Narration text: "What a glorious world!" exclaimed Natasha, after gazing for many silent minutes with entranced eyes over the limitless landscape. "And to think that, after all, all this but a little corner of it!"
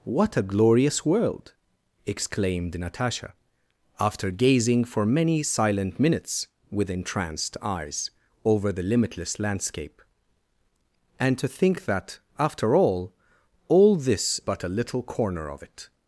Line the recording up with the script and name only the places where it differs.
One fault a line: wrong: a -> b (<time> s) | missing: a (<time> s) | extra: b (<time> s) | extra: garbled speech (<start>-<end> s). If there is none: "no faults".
no faults